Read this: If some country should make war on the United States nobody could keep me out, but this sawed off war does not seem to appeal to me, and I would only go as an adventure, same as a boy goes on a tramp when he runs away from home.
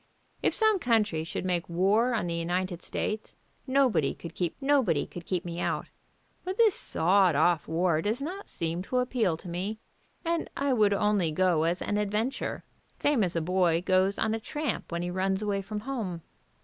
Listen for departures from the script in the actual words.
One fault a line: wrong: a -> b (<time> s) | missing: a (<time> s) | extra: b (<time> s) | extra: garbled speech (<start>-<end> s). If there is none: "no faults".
extra: nobody could keep (4.6 s)